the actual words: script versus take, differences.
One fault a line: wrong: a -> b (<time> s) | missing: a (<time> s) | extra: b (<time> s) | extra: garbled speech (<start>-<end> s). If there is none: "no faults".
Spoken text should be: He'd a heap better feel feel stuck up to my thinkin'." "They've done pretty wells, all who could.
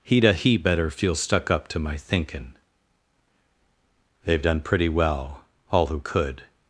missing: feel (1.2 s)
wrong: wells -> well (4.9 s)